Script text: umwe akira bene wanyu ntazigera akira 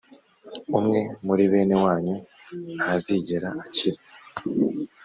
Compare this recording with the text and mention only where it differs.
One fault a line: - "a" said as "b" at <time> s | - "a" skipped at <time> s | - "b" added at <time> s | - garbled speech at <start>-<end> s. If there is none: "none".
- "akira" said as "muri" at 1.2 s